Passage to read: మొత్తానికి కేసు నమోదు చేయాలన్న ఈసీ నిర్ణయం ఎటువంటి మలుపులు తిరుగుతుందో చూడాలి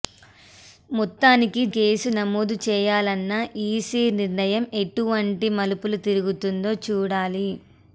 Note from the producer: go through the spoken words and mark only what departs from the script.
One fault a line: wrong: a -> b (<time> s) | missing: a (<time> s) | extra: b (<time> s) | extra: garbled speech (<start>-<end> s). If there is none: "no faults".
no faults